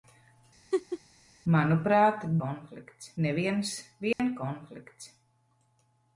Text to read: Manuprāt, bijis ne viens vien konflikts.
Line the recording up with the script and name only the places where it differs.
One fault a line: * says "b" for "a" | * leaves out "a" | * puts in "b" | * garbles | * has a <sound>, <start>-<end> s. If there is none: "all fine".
* has a laugh, 0.7-1.0 s
* says "konflikts" for "bijis"
* has a dropout, 4.1-4.2 s